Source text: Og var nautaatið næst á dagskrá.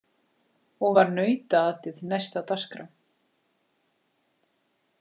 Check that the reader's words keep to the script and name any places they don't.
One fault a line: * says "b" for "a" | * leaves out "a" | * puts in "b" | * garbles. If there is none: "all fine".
all fine